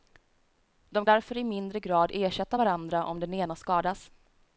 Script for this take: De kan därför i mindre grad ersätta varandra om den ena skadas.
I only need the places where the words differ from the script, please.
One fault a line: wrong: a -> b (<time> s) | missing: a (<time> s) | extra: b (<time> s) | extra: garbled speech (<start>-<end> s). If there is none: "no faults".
missing: kan (1.1 s)